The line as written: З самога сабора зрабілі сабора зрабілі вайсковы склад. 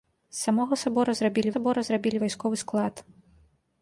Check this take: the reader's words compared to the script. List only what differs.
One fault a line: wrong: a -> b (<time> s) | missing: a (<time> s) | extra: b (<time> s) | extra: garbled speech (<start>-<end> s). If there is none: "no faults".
no faults